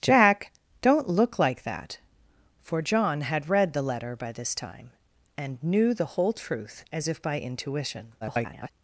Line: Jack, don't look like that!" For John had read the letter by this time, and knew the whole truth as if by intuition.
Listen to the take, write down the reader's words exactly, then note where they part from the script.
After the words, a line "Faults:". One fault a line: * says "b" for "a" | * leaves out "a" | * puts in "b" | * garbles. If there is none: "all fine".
Jack, don't look like that!" For John had read the letter by this time, and knew the whole truth as if by intuition. [garbled]
Faults:
* garbles